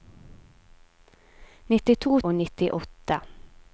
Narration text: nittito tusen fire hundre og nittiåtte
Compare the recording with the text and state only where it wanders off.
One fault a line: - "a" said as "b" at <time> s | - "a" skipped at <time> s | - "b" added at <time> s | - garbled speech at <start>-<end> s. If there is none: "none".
- "tusen fire hundre" skipped at 2.1 s